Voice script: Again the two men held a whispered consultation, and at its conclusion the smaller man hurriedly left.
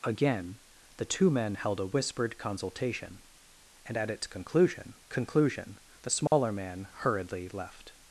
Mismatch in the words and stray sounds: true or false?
true